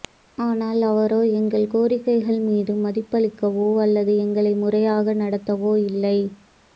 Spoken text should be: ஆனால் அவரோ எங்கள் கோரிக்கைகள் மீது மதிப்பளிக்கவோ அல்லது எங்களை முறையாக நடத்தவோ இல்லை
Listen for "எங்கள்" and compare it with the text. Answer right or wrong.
right